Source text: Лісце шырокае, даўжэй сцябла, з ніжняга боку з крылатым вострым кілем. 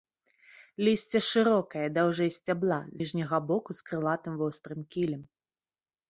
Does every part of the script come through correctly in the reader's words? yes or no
no